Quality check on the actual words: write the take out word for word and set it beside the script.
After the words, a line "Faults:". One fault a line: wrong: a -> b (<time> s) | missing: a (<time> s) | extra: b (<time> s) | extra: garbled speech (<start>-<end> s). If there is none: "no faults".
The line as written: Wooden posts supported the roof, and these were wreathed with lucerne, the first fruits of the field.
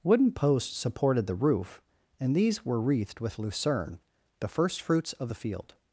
Wooden posts supported the roof, and these were wreathed with lucerne, the first fruits of the field.
Faults:
no faults